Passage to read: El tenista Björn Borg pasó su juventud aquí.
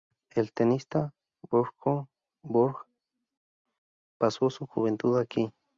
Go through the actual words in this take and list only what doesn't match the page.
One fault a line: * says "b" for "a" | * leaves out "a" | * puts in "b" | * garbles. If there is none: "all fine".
all fine